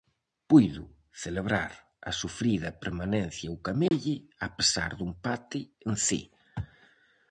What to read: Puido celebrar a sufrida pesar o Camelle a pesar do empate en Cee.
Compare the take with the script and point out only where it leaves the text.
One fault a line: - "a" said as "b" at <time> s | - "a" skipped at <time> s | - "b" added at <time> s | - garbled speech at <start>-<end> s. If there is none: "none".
- "pesar" said as "permanencia" at 2.8 s